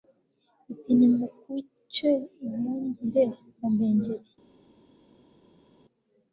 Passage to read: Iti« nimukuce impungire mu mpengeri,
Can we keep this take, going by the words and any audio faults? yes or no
yes